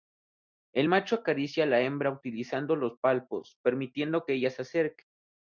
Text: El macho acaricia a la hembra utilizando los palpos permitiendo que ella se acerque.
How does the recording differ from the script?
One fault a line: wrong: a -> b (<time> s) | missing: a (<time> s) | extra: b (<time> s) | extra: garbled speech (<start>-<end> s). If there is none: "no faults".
no faults